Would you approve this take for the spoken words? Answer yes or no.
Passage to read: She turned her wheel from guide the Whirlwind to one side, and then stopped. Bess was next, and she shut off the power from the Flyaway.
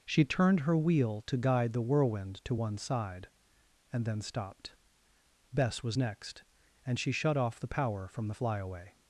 no